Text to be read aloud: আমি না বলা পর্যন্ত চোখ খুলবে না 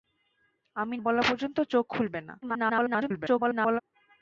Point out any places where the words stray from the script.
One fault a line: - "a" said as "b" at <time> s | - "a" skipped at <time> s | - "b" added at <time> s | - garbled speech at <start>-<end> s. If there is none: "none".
- "না" skipped at 0.9 s
- garbled speech at 2.4-3.8 s